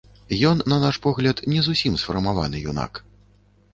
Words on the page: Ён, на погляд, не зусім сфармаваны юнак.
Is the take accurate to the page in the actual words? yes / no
no